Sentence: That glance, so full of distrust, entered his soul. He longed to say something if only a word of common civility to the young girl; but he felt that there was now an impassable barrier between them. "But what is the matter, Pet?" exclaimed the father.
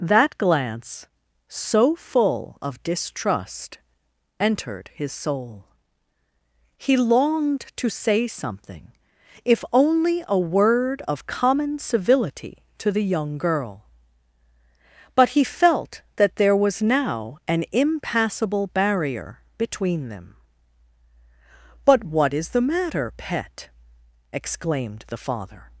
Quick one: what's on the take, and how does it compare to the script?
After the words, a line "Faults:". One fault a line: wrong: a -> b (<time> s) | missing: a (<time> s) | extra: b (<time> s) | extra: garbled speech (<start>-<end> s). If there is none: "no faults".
That glance, so full of distrust, entered his soul. He longed to say something if only a word of common civility to the young girl; but he felt that there was now an impassable barrier between them. "But what is the matter, Pet?" exclaimed the father.
Faults:
no faults